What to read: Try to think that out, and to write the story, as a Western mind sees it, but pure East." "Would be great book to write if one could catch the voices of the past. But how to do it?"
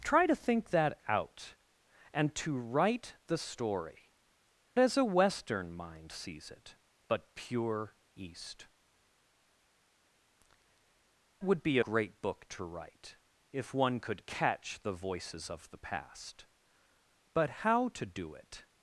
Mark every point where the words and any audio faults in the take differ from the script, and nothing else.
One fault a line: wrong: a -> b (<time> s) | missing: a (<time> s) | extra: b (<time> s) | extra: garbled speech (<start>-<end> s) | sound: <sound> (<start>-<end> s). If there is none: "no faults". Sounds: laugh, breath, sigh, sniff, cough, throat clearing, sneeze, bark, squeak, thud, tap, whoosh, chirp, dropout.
no faults